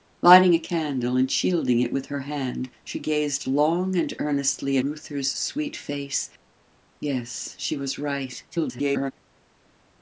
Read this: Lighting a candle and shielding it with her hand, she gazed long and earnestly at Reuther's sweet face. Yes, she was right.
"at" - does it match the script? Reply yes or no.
no